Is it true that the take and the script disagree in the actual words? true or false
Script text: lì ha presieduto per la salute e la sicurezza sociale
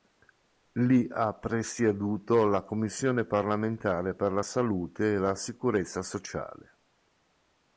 true